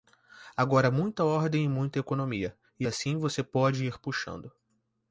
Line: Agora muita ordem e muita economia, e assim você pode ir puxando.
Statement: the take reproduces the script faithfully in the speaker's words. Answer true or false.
true